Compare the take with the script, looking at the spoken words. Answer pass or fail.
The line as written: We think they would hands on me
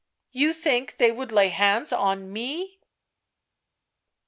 fail